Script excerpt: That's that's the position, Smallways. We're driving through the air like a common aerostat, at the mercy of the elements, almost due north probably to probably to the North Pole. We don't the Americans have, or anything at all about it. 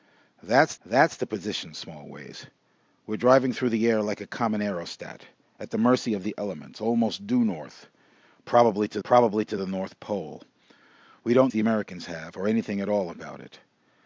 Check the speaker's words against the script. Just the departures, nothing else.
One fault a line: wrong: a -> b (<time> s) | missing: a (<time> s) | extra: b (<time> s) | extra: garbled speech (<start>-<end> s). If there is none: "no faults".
no faults